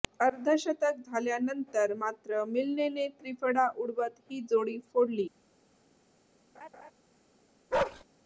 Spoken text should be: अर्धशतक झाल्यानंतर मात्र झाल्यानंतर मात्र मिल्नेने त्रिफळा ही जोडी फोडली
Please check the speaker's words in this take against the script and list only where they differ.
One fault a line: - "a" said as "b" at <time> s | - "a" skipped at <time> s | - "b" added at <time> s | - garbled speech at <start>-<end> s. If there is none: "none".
- "झाल्यानंतर मात्र" skipped at 2.4 s
- "उडवत" added at 3.8 s